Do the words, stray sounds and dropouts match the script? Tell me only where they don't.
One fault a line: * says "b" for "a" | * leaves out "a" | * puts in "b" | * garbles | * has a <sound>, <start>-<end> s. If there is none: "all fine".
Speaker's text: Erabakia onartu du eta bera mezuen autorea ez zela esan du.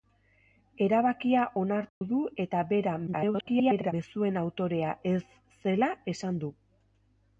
* has a dropout, 1.9-2.0 s
* garbles